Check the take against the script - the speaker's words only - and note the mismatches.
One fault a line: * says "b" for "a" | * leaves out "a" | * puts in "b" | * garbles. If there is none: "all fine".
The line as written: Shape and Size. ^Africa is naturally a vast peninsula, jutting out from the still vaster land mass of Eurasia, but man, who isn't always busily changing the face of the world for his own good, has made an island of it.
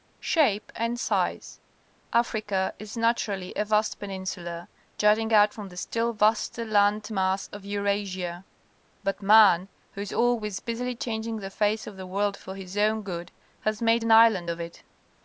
* says "is" for "isn't"